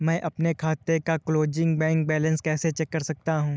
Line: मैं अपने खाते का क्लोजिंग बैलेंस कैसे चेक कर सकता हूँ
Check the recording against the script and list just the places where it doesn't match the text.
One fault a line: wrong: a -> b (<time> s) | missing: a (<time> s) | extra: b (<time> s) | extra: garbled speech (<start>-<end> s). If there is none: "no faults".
extra: बैंक (1.8 s)